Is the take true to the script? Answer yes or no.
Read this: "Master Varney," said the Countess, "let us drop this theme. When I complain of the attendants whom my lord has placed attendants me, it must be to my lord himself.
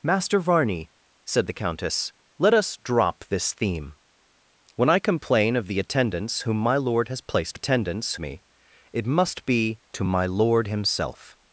yes